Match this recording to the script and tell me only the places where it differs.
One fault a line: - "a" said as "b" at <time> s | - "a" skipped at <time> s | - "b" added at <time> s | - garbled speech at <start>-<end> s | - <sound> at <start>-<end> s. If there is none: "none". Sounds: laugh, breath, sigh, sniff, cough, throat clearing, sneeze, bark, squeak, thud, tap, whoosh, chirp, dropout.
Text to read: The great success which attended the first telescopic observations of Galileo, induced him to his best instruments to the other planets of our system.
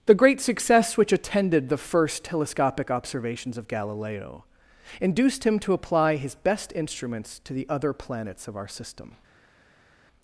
- "apply" added at 5.7 s